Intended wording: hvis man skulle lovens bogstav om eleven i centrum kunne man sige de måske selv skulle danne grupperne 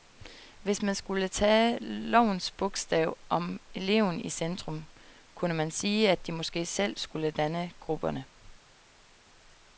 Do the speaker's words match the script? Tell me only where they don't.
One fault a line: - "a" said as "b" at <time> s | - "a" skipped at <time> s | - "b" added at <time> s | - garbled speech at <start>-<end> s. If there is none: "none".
- "tage" added at 1.3 s
- "at" added at 6.1 s